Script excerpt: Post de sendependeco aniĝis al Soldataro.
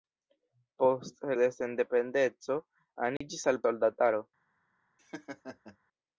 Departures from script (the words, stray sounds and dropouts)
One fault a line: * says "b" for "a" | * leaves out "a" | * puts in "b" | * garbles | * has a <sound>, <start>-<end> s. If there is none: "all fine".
* has a dropout, 3.2-3.2 s
* has a laugh, 5.0-5.8 s